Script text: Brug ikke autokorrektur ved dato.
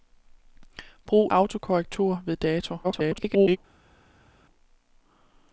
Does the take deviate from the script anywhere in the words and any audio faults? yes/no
yes